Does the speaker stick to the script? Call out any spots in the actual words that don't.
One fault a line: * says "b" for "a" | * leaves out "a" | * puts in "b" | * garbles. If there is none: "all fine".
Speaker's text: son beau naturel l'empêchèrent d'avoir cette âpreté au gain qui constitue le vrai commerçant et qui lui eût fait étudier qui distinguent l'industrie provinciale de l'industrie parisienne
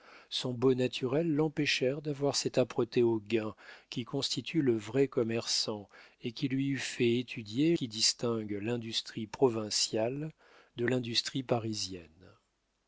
all fine